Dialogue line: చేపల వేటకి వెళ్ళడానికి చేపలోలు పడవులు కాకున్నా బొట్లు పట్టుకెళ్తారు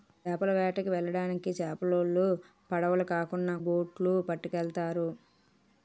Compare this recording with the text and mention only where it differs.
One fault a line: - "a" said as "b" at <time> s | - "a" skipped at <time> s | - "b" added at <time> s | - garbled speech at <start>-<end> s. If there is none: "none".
none